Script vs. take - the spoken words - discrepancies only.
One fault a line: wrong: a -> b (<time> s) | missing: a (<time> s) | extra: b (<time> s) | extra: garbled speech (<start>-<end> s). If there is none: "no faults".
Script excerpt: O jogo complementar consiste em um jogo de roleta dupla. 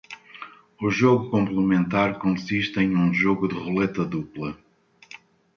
no faults